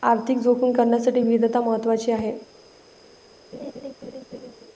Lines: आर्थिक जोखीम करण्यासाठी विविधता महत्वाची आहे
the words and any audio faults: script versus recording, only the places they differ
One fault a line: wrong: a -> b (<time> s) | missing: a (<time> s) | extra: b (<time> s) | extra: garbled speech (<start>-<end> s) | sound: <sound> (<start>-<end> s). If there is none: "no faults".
sound: laugh (3.5-4.5 s)